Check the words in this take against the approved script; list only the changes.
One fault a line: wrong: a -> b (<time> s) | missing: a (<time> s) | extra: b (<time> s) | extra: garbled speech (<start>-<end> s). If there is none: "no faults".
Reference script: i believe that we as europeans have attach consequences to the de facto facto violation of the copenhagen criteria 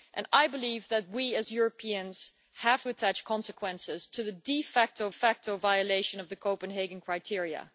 no faults